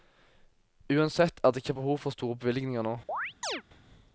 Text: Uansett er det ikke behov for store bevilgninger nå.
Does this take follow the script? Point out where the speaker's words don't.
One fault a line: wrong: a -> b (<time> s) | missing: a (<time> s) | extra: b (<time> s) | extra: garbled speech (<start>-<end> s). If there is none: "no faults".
no faults